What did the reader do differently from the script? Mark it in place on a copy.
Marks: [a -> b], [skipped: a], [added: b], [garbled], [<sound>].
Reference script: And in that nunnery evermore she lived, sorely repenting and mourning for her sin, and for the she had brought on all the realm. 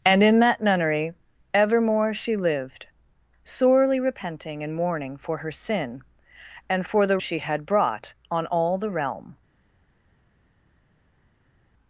And in that nunnery evermore she lived, sorely repenting and mourning for her sin, and for the she had brought on all the realm.